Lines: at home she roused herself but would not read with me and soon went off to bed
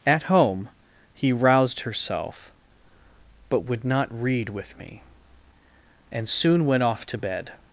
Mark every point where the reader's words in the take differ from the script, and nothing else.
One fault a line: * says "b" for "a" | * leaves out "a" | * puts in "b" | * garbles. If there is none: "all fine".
* says "he" for "she"